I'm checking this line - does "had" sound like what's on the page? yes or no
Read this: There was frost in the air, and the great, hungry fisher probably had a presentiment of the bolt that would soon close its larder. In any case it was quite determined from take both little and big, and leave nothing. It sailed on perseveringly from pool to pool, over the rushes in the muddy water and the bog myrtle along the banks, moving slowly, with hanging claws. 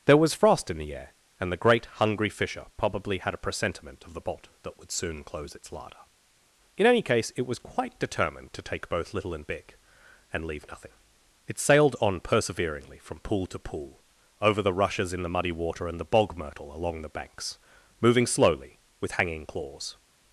yes